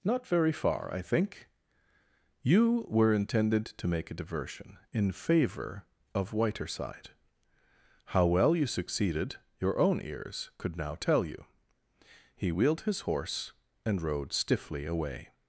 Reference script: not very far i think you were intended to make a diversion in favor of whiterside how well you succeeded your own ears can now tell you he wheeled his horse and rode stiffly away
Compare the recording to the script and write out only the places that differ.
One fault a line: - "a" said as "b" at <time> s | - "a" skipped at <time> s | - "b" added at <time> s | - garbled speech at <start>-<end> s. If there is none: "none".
- "can" said as "could" at 10.6 s